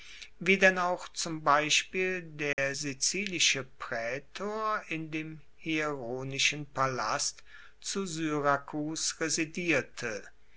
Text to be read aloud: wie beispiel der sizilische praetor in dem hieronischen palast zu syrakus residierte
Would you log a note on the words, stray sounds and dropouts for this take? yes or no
yes